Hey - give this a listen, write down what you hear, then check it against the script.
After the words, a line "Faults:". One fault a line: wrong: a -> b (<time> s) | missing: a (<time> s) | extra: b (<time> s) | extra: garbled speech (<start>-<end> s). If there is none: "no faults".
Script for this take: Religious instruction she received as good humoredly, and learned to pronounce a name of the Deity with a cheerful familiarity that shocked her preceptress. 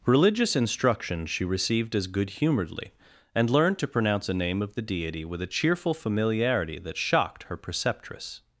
Religious instruction she received as good humoredly, and learned to pronounce a name of the Deity with a cheerful familiarity that shocked her preceptress.
Faults:
no faults